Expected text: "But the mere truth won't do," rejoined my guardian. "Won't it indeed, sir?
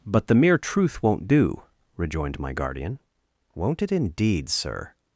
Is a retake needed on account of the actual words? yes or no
no